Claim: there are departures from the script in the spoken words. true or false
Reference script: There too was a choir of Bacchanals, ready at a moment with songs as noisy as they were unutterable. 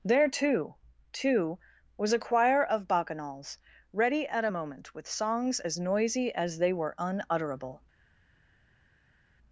true